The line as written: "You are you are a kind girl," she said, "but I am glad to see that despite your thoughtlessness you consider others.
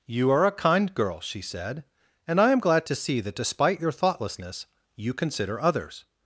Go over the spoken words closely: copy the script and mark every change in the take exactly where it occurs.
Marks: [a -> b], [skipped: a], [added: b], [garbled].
"You are [skipped: you are] a kind girl," she said, ["but -> and] I am glad to see that despite your thoughtlessness you consider others.